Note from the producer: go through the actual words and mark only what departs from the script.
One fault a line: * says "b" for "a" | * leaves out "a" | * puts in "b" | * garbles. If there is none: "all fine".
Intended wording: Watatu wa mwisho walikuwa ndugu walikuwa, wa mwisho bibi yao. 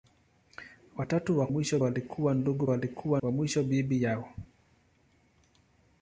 all fine